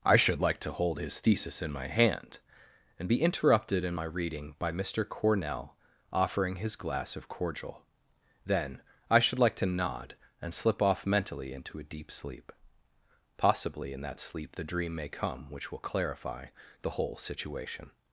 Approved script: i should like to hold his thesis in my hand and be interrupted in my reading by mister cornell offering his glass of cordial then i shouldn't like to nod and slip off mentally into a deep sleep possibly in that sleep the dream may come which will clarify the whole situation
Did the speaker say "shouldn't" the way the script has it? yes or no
no